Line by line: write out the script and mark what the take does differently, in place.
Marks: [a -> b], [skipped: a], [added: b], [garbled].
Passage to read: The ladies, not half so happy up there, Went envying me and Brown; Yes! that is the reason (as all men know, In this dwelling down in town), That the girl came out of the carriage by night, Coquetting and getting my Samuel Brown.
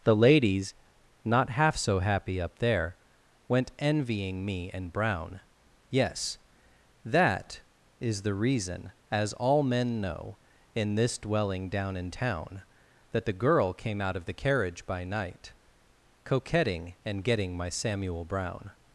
The ladies, not half so happy up there, Went envying me and Brown; Yes! that is the reason (as all men know, In this dwelling down in town), That the girl came out of the carriage by night, Coquetting and getting my Samuel Brown.